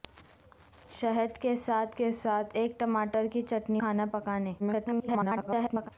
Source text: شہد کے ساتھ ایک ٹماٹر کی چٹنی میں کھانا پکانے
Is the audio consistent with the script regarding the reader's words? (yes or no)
no